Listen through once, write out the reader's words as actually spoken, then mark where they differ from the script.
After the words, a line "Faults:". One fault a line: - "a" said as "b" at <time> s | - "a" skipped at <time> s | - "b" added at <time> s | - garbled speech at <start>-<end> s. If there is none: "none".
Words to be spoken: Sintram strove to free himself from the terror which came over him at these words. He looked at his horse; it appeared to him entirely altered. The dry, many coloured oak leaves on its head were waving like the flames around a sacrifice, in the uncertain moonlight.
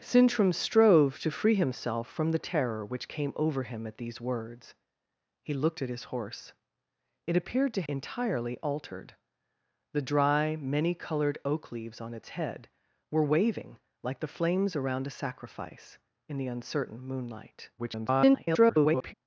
Sintram strove to free himself from the terror which came over him at these words. He looked at his horse; it appeared to entirely altered. The dry, many coloured oak leaves on its head were waving like the flames around a sacrifice, in the uncertain moonlight. [garbled]
Faults:
- "him" skipped at 7.8 s
- garbled speech at 17.8-19.1 s